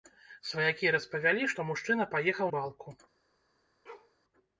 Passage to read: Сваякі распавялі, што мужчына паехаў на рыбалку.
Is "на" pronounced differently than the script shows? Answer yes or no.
yes